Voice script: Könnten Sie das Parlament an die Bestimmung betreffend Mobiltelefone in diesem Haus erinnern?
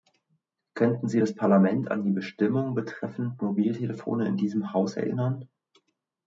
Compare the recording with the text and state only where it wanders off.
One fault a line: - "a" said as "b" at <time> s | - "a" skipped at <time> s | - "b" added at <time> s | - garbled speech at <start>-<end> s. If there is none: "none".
none